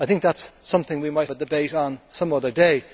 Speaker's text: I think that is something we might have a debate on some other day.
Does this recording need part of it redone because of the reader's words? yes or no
yes